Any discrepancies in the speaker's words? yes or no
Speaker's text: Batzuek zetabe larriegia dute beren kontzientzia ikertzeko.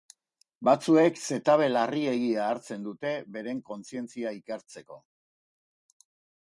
yes